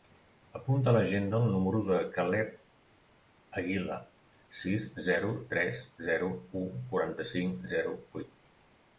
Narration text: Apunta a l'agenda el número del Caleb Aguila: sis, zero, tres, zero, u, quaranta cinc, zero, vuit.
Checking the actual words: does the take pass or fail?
pass